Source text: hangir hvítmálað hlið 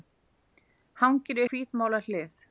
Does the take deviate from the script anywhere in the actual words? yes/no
no